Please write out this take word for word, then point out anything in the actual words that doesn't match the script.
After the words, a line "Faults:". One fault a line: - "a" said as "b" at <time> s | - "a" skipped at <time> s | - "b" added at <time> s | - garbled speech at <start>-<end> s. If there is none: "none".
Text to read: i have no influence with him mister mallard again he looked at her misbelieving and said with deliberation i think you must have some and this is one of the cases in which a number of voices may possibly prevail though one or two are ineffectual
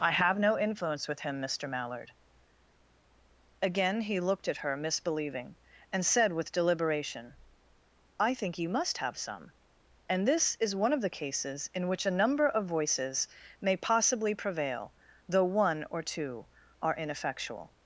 i have no influence with him mister mallard again he looked at her misbelieving and said with deliberation i think you must have some and this is one of the cases in which a number of voices may possibly prevail though one or two are ineffectual
Faults:
none